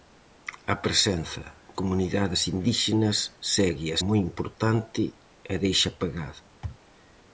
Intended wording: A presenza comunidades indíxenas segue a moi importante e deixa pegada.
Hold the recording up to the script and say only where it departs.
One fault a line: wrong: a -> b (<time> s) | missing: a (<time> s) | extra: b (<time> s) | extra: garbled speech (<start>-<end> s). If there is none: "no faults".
no faults